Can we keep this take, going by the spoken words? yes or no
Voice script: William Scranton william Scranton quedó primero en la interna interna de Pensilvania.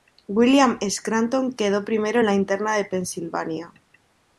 no